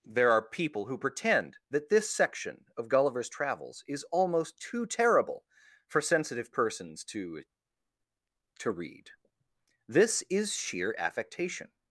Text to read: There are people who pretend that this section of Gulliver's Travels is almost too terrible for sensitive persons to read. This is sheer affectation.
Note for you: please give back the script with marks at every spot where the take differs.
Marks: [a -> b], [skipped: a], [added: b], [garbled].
There are people who pretend that this section of Gulliver's Travels is almost too terrible for sensitive persons to [added: to] read. This is sheer affectation.